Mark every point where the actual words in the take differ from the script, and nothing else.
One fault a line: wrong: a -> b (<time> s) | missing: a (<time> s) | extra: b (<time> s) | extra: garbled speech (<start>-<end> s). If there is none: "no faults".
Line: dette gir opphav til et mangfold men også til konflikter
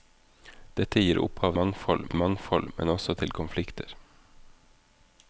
wrong: til -> mangfold (1.6 s)